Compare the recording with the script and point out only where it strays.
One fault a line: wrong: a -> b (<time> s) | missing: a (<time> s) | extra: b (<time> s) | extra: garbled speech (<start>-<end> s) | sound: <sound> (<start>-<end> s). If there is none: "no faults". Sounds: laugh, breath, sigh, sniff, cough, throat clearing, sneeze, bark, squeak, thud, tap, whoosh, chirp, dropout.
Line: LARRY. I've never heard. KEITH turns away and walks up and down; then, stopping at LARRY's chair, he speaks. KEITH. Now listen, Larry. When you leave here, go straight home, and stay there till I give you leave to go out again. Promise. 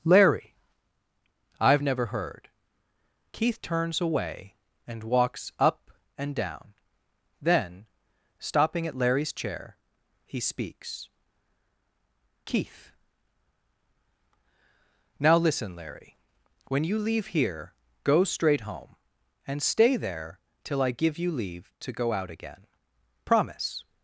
no faults